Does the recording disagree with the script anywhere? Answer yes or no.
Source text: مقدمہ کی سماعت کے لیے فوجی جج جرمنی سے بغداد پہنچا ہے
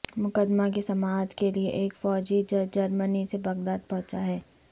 yes